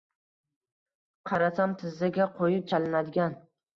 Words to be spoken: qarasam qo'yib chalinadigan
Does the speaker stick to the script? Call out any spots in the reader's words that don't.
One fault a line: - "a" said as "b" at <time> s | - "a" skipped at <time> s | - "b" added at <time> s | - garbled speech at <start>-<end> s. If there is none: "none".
- "tizzaga" added at 1.8 s